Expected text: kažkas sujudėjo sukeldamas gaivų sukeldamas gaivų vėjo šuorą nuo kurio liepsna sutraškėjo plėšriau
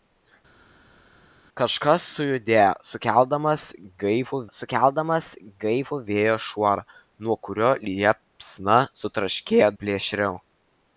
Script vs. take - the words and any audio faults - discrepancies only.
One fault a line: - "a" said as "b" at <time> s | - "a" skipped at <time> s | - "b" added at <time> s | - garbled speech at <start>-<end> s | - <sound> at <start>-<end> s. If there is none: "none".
none